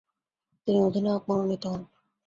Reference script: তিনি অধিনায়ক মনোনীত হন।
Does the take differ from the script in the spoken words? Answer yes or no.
no